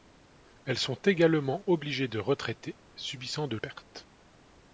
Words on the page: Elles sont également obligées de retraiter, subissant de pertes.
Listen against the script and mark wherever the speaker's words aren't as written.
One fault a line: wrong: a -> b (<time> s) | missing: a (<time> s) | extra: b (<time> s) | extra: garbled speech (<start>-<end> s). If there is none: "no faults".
no faults